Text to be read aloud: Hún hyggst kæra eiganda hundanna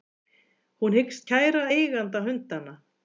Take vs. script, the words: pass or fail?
pass